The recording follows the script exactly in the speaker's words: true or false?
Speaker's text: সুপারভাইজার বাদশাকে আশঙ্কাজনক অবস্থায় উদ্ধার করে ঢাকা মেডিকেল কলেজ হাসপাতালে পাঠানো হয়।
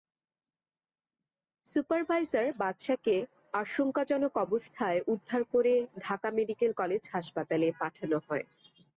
true